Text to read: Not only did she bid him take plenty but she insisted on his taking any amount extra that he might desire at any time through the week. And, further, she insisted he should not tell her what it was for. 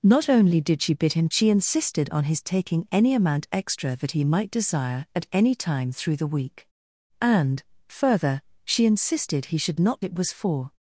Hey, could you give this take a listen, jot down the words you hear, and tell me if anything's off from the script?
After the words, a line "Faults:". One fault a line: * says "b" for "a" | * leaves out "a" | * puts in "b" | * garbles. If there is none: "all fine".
Not only did she bid him she insisted on his taking any amount extra that he might desire at any time through the week. And, further, she insisted he should not it was for.
Faults:
* leaves out "take plenty but"
* leaves out "tell her what"